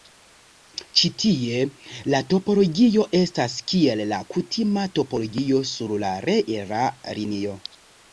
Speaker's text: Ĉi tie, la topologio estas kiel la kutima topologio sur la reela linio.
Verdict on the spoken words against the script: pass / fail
pass